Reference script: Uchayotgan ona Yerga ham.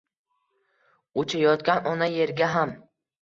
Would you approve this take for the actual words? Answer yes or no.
yes